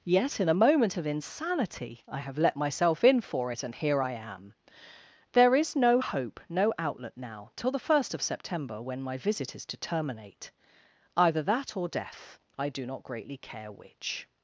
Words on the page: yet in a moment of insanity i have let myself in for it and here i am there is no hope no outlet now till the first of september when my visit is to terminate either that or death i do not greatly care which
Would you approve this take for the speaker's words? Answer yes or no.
yes